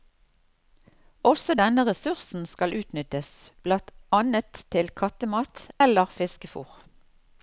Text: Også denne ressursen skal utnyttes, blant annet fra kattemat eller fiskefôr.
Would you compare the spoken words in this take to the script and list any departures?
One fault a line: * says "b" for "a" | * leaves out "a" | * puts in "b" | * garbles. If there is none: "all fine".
* says "til" for "fra"